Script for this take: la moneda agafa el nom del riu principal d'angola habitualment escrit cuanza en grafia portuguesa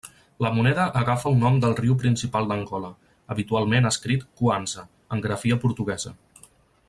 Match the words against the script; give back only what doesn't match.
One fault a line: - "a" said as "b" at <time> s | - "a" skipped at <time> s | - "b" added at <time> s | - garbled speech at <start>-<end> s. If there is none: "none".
none